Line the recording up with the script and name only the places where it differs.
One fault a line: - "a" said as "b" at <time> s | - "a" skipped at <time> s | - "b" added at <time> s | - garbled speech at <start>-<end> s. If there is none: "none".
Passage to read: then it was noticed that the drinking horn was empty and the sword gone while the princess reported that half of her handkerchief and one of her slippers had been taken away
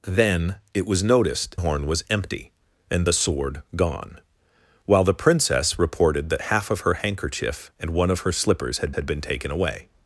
- "that the drinking" skipped at 1.6 s
- "had" added at 8.9 s